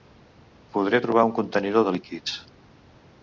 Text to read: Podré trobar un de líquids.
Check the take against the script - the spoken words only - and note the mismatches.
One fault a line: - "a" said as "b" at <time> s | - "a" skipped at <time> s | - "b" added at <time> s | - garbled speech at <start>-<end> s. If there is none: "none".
- "contenidor" added at 1.4 s